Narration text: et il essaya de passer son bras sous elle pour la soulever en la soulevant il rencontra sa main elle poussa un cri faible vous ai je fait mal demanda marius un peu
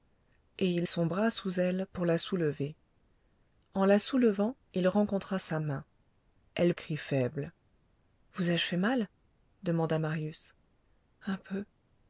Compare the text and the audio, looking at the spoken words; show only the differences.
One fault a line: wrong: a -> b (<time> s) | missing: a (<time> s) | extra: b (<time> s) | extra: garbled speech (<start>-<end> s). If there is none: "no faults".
missing: essaya de passer (0.9 s)
missing: poussa un (6.7 s)